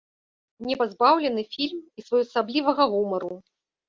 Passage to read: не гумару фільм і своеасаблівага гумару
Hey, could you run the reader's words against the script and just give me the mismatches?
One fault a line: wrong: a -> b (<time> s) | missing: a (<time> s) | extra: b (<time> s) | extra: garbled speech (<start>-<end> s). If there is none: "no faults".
wrong: гумару -> пазбаўлены (0.8 s)